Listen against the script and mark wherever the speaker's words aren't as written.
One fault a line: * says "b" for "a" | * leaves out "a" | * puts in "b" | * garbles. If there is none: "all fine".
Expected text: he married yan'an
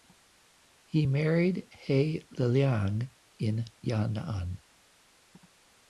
* puts in "he liliang in"